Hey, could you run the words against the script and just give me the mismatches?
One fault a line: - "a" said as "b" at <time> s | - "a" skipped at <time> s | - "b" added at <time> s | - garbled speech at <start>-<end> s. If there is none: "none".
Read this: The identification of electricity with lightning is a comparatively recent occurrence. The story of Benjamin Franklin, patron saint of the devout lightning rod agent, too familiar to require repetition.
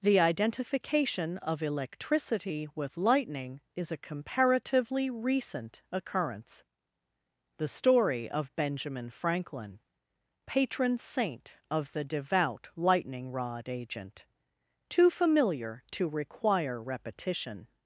none